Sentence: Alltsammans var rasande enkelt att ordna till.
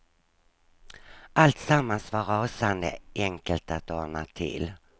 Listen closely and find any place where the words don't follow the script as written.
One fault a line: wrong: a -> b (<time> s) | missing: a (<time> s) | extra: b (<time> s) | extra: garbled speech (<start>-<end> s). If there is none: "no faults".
no faults